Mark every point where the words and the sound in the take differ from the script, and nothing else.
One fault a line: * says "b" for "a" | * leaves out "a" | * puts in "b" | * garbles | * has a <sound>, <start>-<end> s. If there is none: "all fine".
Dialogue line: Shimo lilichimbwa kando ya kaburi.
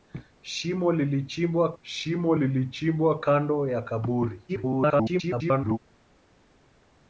* puts in "shimo lilichimbwa"
* garbles